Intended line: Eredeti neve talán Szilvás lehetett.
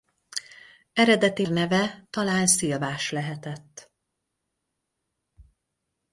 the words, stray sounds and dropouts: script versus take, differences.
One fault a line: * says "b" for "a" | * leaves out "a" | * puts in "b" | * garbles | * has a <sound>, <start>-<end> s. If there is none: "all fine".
all fine